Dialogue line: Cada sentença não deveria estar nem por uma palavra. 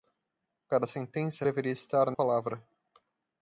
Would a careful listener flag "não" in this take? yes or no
yes